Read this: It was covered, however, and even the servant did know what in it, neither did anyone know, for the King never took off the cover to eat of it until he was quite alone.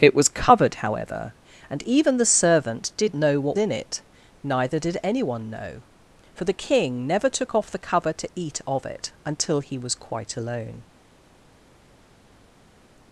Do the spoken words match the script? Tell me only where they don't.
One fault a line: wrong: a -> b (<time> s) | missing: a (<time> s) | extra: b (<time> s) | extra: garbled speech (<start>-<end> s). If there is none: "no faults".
no faults